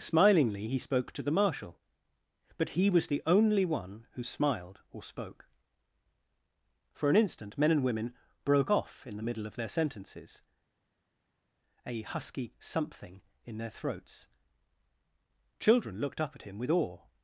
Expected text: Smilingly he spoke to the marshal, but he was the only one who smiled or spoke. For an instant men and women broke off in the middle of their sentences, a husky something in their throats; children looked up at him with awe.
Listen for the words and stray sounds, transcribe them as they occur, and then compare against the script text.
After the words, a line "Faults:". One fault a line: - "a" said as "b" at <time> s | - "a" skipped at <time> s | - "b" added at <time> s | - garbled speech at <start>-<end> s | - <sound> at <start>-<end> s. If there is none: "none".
Smilingly he spoke to the marshal, but he was the only one who smiled or spoke. For an instant men and women broke off in the middle of their sentences, a husky something in their throats; children looked up at him with awe.
Faults:
none